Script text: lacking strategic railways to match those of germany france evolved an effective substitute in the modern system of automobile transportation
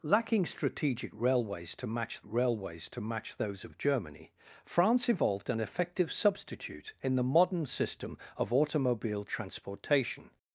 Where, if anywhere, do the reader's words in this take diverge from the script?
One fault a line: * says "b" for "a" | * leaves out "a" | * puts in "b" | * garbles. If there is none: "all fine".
* puts in "railways to match"